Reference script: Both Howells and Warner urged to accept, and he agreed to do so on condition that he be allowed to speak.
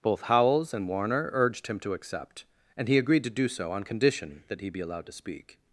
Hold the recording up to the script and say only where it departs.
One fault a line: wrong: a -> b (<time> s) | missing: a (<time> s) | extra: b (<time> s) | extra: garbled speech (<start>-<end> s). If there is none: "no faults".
extra: him (1.7 s)